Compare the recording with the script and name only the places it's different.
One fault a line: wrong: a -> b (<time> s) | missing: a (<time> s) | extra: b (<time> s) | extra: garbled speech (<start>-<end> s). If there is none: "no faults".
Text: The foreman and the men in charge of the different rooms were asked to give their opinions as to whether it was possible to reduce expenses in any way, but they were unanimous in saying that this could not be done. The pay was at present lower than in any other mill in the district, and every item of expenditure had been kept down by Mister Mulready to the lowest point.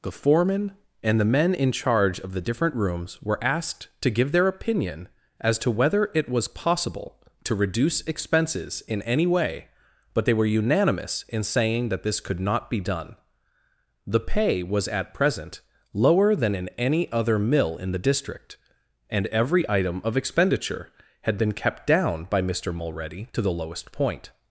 wrong: opinions -> opinion (4.5 s)